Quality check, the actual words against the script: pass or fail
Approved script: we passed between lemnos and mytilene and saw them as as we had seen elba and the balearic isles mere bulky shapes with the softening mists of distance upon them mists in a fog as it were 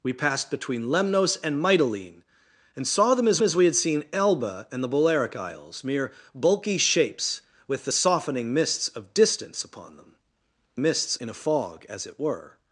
pass